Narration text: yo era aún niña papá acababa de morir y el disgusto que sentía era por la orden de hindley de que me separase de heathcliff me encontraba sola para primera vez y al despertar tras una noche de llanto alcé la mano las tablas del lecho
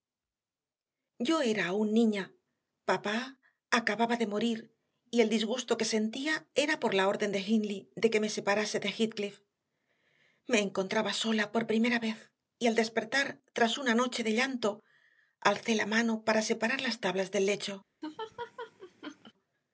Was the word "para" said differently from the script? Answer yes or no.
yes